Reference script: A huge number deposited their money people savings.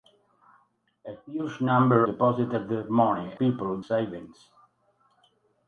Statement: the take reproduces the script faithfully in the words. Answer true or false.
true